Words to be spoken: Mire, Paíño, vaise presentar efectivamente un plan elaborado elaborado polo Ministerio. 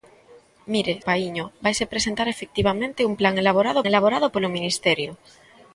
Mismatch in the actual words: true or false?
false